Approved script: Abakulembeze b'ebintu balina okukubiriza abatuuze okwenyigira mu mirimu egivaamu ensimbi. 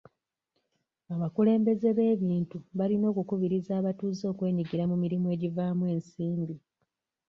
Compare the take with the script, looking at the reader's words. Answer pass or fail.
pass